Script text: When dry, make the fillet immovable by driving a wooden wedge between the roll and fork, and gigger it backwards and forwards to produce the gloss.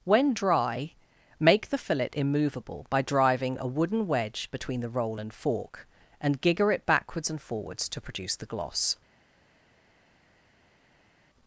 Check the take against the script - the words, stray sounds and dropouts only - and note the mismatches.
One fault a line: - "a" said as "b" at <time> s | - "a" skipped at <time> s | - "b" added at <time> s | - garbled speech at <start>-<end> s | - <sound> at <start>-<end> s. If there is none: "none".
none